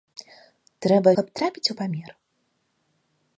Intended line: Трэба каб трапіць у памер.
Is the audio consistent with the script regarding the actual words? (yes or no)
yes